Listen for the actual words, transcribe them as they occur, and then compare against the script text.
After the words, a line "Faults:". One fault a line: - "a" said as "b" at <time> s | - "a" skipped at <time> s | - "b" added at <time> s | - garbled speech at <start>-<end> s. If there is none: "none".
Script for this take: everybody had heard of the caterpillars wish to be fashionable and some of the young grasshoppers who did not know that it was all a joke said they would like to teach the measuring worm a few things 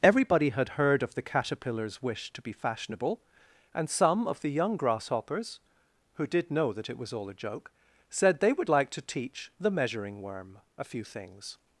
everybody had heard of the caterpillars wish to be fashionable and some of the young grasshoppers who did know that it was all a joke said they would like to teach the measuring worm a few things
Faults:
- "not" skipped at 6.5 s